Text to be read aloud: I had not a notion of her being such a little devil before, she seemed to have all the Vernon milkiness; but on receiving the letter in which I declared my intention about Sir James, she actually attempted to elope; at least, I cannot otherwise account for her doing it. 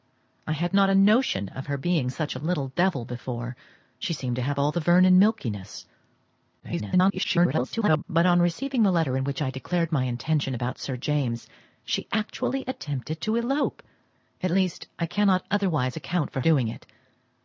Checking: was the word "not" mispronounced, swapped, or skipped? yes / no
no